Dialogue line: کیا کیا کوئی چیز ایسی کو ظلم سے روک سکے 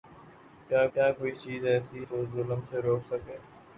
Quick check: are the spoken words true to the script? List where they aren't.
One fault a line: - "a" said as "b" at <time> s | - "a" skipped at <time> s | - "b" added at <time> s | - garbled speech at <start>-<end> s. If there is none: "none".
none